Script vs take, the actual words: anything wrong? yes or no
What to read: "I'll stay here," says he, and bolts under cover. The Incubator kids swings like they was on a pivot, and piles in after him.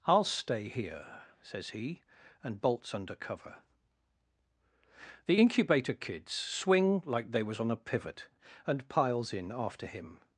yes